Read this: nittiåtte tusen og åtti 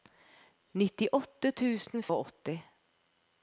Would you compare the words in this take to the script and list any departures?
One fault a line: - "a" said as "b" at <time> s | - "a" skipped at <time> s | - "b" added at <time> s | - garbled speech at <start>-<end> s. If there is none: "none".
none